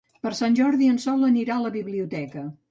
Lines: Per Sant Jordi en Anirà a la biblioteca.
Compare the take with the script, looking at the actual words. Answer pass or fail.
fail